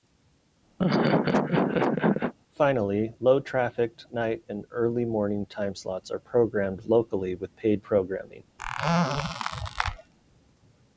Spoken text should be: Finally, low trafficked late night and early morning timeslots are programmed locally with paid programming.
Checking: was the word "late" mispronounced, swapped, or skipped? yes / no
yes